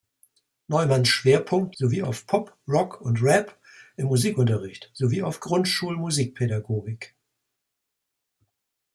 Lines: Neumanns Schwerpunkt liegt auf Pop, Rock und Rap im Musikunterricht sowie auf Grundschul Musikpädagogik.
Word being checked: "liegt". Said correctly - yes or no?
no